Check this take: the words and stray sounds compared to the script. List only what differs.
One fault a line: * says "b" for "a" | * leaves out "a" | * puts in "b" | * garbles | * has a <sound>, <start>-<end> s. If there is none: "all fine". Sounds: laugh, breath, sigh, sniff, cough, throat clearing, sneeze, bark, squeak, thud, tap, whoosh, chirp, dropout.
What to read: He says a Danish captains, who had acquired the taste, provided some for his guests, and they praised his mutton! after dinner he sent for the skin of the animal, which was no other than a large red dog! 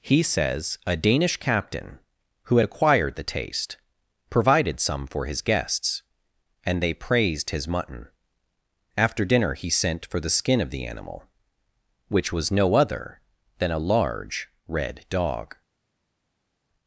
* says "captain" for "captains"